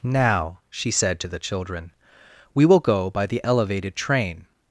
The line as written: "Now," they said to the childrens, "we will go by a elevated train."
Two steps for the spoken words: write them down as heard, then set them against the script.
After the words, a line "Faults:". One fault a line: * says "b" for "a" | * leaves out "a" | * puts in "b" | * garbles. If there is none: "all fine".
"Now," she said to the children, "we will go by the elevated train."
Faults:
* says "she" for "they"
* says "children" for "childrens"
* says "the" for "a"